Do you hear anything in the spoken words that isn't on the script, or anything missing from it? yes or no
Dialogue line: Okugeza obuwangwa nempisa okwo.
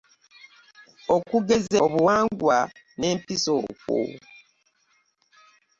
no